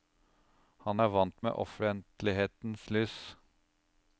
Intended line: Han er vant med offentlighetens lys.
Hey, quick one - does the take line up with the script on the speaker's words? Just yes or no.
yes